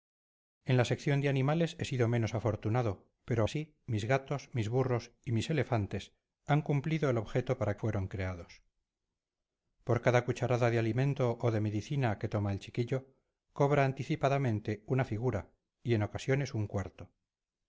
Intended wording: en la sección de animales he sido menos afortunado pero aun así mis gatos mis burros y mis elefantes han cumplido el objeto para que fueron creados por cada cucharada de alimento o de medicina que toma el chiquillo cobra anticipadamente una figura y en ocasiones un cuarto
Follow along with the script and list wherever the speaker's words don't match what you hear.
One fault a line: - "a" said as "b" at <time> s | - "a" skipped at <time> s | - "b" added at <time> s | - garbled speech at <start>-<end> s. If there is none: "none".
- "aun" skipped at 3.4 s
- "que" skipped at 7.8 s